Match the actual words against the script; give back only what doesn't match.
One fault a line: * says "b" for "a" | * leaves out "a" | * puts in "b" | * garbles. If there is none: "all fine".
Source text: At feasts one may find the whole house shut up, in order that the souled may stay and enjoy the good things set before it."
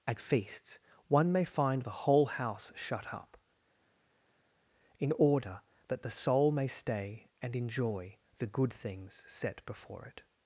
* says "soul" for "souled"